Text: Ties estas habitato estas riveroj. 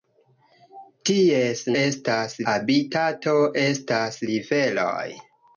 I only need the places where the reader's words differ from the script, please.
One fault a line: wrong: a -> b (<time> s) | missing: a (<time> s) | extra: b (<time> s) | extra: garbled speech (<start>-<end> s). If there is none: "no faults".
no faults